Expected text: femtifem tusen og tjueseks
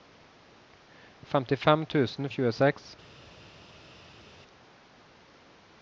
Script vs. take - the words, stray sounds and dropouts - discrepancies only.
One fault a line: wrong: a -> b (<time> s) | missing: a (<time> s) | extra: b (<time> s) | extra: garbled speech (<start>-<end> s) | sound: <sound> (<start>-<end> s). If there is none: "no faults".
no faults